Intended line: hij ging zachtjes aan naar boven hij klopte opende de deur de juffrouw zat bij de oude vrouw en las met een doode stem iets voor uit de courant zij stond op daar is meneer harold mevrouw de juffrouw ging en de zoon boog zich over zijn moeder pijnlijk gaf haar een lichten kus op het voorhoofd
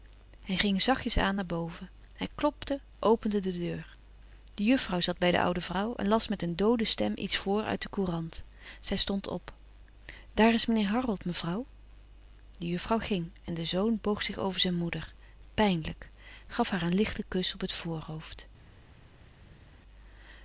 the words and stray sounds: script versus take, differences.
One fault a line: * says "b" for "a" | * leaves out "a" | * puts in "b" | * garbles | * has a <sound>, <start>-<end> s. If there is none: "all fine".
all fine